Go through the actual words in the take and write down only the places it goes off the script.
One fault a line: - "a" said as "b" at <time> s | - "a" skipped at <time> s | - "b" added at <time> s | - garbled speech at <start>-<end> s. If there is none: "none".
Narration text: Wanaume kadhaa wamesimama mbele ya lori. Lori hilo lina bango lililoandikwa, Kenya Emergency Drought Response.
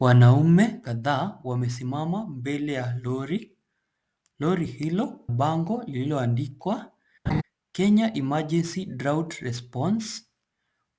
- "lina" skipped at 5.2 s